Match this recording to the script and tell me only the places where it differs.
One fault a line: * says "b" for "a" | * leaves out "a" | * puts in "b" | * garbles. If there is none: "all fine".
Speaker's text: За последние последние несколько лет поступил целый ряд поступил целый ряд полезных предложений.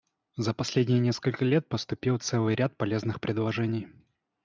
* leaves out "последние"
* leaves out "поступил целый ряд"